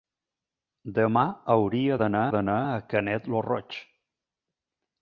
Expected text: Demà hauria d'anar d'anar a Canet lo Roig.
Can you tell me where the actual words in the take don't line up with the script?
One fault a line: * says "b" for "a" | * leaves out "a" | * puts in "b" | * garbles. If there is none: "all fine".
all fine